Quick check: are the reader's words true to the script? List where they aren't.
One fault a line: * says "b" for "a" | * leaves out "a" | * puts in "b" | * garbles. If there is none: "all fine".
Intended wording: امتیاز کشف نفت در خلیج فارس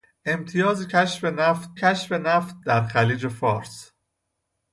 * puts in "کشف نفت"